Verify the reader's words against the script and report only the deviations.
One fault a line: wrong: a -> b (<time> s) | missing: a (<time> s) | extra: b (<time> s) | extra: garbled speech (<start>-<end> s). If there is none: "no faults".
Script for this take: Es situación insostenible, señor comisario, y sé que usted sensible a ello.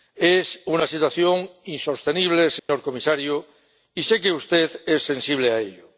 extra: una (0.7 s)
extra: es (4.8 s)